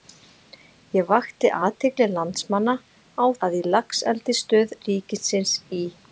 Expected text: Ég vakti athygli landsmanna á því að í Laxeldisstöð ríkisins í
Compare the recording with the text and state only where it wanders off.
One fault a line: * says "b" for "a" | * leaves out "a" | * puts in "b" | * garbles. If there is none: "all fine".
* leaves out "því"